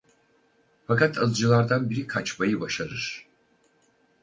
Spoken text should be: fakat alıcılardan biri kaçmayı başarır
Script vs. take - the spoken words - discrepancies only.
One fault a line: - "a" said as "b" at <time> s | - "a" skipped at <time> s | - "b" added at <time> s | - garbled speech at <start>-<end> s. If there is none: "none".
none